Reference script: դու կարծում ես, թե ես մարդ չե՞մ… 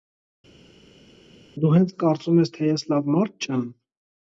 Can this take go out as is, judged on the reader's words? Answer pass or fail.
fail